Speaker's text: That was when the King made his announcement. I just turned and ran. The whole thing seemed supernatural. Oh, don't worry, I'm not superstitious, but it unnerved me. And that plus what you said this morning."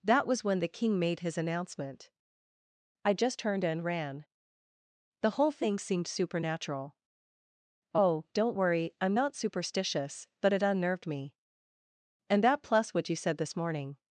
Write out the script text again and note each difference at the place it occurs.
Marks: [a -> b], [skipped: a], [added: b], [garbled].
That was when the King made his announcement. I just turned and ran. The whole thing seemed supernatural. Oh, don't worry, I'm not superstitious, but it unnerved me. And that plus what you said this morning."